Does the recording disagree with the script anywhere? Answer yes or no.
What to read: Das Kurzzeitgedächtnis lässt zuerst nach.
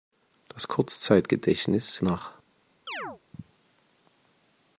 yes